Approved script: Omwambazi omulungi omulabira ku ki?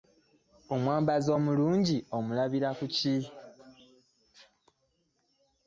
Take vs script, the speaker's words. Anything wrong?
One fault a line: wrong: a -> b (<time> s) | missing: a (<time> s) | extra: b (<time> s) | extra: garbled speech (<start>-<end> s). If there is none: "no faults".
no faults